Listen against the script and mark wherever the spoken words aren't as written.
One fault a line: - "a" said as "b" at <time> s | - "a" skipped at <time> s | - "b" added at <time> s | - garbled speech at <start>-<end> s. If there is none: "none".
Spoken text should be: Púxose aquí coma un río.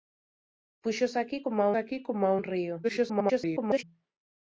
- "aquí coma" added at 1.8 s
- garbled speech at 2.8-3.8 s